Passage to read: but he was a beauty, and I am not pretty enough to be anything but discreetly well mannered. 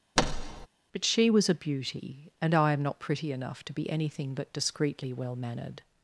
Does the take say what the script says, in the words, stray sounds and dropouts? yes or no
no